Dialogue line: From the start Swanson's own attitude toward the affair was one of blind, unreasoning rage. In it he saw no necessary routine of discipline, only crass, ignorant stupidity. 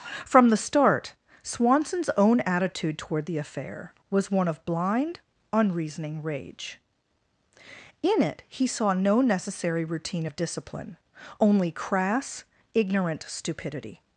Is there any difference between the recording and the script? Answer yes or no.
no